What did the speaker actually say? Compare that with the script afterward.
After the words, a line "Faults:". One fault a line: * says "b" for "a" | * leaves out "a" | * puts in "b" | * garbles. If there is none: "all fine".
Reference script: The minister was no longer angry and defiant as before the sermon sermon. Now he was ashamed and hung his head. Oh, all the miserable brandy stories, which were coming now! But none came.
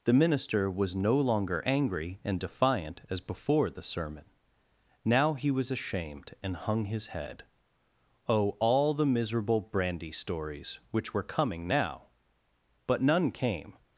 The minister was no longer angry and defiant as before the sermon. Now he was ashamed and hung his head. Oh, all the miserable brandy stories, which were coming now! But none came.
Faults:
* leaves out "sermon"